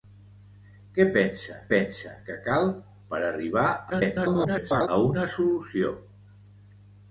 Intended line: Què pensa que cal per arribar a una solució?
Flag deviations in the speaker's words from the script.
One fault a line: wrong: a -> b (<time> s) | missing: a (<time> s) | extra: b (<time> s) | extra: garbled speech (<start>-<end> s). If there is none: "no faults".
extra: pensa (1.7 s)
extra: garbled speech (3.9-4.9 s)